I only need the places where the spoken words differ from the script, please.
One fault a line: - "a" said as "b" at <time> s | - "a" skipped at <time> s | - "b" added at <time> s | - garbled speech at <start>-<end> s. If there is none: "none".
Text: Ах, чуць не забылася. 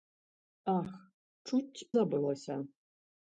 - "не" skipped at 1.9 s